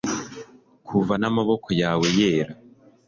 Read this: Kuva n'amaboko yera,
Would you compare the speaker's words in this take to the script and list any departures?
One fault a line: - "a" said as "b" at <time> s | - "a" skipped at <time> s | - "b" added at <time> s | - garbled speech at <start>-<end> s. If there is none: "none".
- "yawe" added at 1.8 s